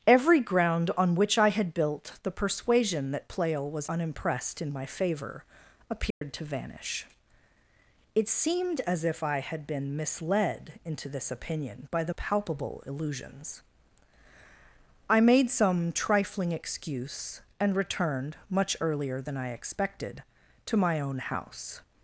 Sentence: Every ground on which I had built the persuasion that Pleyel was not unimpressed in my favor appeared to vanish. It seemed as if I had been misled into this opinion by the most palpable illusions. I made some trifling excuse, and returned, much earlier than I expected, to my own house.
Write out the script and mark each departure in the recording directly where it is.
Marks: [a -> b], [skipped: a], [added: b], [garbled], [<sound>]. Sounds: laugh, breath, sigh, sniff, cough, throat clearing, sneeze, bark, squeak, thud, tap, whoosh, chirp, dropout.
Every ground on which I had built the persuasion that Pleyel was [skipped: not] unimpressed in my favor appeared [dropout] to vanish. It seemed as if I had been misled into this opinion by the [skipped: most] palpable illusions. I made some trifling excuse, and returned, much earlier than I expected, to my own house.